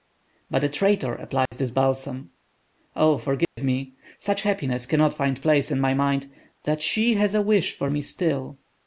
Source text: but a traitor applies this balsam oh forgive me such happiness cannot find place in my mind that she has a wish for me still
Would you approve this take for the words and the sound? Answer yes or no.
no